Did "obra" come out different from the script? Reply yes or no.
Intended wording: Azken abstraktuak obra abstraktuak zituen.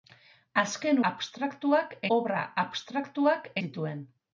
no